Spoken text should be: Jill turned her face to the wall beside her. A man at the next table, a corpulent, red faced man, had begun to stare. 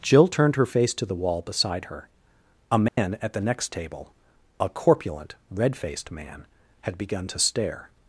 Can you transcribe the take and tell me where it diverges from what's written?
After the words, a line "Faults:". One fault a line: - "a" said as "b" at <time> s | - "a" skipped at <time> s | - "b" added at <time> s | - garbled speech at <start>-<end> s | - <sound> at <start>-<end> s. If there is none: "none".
Jill turned her face to the wall beside her. A man at the next table, a corpulent, red faced man, had begun to stare.
Faults:
- dropout at 2.9-3.0 s